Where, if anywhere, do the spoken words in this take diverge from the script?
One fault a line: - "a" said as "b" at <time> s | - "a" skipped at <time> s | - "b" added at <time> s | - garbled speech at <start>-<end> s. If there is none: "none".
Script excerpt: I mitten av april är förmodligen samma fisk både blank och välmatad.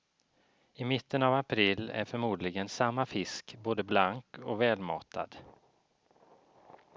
none